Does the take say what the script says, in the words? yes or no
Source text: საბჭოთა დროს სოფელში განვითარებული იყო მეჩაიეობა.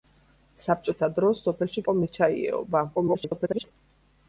no